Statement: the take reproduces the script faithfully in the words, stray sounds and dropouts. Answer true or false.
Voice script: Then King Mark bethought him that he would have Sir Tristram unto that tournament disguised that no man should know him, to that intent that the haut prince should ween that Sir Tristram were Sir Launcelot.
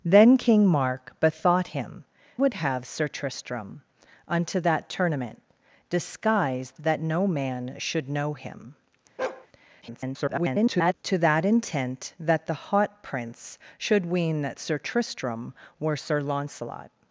false